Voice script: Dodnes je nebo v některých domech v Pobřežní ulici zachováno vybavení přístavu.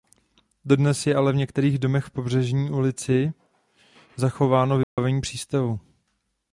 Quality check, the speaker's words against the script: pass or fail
fail